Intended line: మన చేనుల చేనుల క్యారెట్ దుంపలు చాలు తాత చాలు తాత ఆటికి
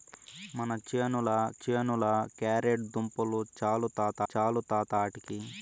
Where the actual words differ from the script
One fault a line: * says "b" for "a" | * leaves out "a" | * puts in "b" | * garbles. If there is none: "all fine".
all fine